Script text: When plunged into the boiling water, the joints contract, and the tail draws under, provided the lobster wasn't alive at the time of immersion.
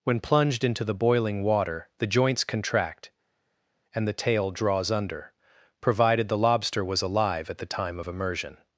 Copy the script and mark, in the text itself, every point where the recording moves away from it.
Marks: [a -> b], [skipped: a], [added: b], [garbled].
When plunged into the boiling water, the joints contract, and the tail draws under, provided the lobster [wasn't -> was] alive at the time of immersion.